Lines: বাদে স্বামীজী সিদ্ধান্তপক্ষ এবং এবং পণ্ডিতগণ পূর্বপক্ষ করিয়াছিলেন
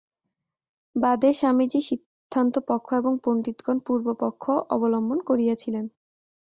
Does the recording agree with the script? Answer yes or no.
no